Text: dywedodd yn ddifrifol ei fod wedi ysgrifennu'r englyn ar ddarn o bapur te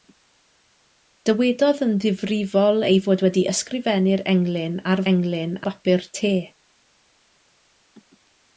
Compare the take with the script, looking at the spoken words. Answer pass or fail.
fail